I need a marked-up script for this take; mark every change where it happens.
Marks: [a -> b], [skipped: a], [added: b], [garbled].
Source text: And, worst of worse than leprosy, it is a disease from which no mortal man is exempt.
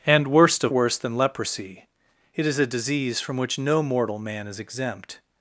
And, worst of worse than leprosy, it is a disease from which no mortal man is exempt.